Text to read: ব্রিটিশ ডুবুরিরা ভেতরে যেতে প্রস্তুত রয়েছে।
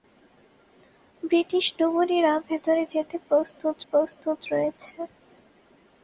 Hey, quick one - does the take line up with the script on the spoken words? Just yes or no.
no